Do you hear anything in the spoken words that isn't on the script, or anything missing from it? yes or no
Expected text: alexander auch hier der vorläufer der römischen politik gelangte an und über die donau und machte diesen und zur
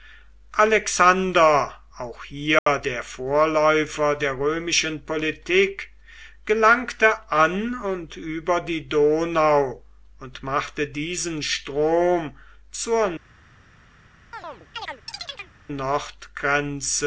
yes